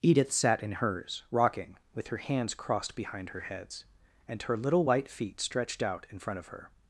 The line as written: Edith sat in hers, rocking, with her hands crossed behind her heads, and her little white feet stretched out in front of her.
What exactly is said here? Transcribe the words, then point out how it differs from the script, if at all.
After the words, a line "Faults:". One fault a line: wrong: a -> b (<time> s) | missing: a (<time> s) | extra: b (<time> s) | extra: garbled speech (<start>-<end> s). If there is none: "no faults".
Edith sat in hers, rocking, with her hands crossed behind her heads, and her little white feet stretched out in front of her.
Faults:
no faults